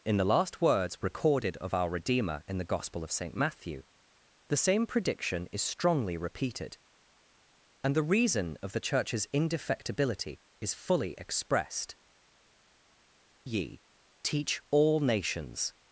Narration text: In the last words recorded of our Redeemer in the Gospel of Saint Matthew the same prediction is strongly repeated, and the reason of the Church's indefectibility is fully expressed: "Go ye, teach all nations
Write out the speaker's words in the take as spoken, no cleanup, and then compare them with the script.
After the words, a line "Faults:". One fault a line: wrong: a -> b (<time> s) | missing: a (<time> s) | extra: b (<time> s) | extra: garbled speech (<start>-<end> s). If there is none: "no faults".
In the last words recorded of our Redeemer in the Gospel of Saint Matthew the same prediction is strongly repeated, and the reason of the Church's indefectibility is fully expressed: "Ye, teach all nations
Faults:
missing: Go (12.0 s)